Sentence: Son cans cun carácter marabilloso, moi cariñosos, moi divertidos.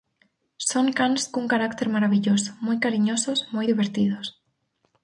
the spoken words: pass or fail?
pass